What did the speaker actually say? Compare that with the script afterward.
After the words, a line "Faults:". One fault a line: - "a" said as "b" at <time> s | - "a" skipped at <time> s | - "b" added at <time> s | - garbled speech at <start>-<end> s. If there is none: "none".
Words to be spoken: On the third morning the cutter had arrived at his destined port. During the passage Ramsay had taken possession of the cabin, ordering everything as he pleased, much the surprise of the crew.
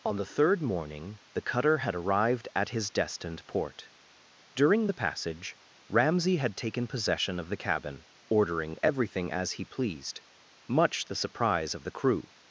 On the third morning the cutter had arrived at his destined port. During the passage Ramsay had taken possession of the cabin, ordering everything as he pleased, much the surprise of the crew.
Faults:
none